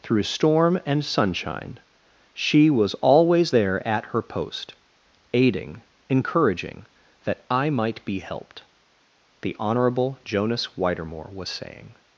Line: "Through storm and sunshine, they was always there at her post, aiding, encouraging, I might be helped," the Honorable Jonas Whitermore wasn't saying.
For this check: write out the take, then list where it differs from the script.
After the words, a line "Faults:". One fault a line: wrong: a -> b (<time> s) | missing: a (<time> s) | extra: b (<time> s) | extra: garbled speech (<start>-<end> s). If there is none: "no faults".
"Through storm and sunshine, she was always there at her post, aiding, encouraging, that I might be helped," the Honorable Jonas Whitermore was saying.
Faults:
wrong: they -> she (2.3 s)
extra: that (7.2 s)
wrong: wasn't -> was (11.3 s)